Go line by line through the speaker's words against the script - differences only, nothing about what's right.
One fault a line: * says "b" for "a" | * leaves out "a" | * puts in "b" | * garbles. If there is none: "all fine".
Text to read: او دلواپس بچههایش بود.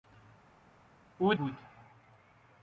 * leaves out "دلواپس بچههایش"